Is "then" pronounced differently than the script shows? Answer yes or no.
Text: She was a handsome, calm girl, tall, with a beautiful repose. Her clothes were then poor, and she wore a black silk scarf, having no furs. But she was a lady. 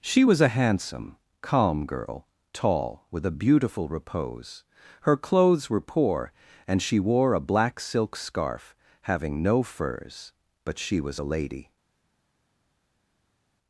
yes